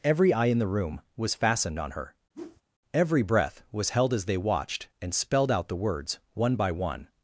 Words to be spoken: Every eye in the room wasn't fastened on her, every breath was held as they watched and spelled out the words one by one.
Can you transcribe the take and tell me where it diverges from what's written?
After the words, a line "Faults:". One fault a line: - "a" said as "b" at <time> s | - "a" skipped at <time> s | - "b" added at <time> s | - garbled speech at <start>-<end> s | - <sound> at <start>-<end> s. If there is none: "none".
Every eye in the room was fastened on her, every breath was held as they watched and spelled out the words one by one.
Faults:
- "wasn't" said as "was" at 1.1 s
- whoosh at 2.3-2.6 s